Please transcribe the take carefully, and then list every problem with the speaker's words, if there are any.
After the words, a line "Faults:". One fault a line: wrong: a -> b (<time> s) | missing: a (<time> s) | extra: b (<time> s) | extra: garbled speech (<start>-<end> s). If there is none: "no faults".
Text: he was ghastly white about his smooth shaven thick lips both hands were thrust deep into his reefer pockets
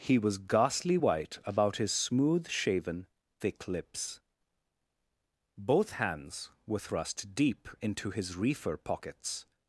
he was ghastly white about his smooth shaven thick lips both hands were thrust deep into his reefer pockets
Faults:
no faults